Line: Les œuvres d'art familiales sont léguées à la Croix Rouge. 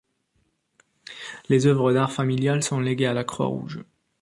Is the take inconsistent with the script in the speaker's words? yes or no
no